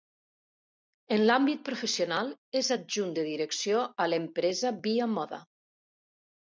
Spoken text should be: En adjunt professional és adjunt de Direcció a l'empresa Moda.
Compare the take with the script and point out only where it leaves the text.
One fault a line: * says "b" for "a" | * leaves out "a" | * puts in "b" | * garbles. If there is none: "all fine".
* says "l'àmbit" for "adjunt"
* puts in "Via"